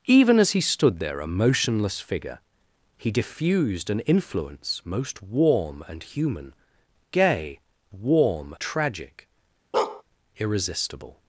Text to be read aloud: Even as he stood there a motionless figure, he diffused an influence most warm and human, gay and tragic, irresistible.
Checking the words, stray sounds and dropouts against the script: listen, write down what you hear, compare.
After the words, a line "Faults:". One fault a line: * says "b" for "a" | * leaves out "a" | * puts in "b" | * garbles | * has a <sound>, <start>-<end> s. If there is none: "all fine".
Even as he stood there a motionless figure, he diffused an influence most warm and human, gay warm tragic, irresistible.
Faults:
* says "warm" for "and"
* has a bark, 9.7-10.0 s